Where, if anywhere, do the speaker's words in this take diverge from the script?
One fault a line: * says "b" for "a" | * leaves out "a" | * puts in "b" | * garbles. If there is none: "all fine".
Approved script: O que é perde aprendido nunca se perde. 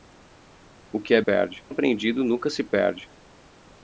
all fine